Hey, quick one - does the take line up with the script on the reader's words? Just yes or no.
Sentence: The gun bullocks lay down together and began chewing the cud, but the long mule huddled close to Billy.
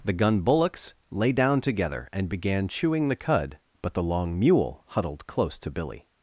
yes